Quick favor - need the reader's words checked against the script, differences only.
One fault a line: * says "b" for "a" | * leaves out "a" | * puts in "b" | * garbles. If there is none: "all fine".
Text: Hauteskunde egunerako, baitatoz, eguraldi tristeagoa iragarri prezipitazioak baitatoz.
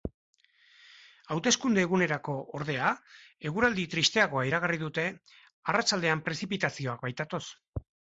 * says "ordea" for "baitatoz"
* puts in "dute arratsaldean"